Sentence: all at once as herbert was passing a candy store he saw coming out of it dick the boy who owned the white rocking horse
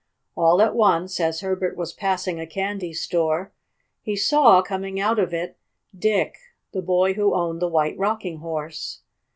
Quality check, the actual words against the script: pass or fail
pass